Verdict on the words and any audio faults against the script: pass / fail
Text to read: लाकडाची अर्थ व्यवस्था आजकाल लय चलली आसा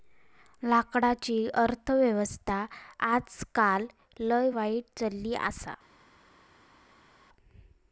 fail